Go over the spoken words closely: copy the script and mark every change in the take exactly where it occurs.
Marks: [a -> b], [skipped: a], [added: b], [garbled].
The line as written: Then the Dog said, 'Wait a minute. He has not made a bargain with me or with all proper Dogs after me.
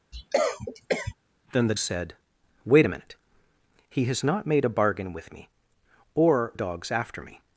Then the [skipped: Dog] said, 'Wait a minute. He has not made a bargain with me or [skipped: with all proper] Dogs after me.